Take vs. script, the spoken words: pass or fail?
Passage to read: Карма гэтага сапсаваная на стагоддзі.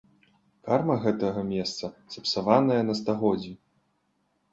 fail